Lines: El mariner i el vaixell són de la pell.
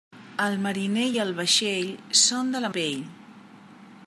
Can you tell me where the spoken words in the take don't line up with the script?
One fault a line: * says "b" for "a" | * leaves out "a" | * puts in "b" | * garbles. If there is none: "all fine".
all fine